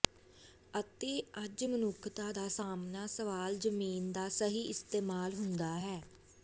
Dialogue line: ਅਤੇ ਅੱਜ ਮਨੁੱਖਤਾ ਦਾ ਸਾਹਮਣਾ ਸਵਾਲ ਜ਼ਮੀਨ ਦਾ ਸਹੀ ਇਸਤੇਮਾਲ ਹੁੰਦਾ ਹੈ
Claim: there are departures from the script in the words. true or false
false